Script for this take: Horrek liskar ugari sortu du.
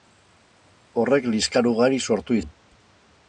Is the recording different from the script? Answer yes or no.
no